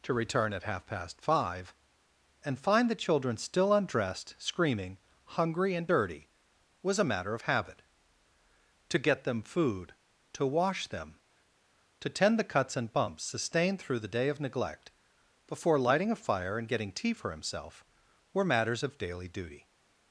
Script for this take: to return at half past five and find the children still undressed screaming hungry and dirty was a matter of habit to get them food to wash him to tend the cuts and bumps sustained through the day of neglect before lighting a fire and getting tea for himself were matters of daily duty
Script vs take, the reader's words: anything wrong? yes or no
yes